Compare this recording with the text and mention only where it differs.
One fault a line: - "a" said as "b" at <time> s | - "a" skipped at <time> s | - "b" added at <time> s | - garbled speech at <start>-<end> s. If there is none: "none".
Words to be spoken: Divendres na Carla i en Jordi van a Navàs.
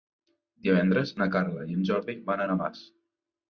none